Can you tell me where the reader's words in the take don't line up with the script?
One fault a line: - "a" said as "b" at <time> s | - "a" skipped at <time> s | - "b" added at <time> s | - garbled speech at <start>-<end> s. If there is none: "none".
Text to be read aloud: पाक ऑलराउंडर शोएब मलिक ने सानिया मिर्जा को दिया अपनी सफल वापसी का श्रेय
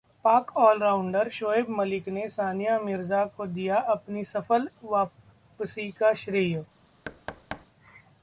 none